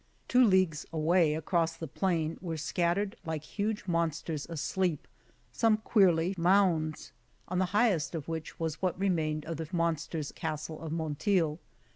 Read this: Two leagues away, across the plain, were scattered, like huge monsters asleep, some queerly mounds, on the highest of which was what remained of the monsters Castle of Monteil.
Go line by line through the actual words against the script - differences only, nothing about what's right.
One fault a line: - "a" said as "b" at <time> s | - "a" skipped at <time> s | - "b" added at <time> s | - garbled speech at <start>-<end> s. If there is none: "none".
none